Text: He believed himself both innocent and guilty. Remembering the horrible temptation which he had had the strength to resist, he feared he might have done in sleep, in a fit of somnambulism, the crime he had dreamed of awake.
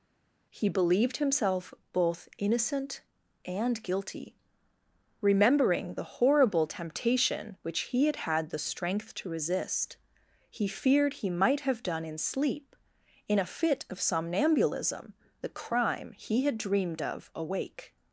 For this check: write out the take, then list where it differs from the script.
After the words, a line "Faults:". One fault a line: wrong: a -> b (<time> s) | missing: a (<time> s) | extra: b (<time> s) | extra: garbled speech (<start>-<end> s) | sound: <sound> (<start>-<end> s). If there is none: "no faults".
He believed himself both innocent and guilty. Remembering the horrible temptation which he had had the strength to resist, he feared he might have done in sleep, in a fit of somnambulism, the crime he had dreamed of awake.
Faults:
no faults